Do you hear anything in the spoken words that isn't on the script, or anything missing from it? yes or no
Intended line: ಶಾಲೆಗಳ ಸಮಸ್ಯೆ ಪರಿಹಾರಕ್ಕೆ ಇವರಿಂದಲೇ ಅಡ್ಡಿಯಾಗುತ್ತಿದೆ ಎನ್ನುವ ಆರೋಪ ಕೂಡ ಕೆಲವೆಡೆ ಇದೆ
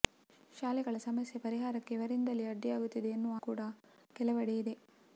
yes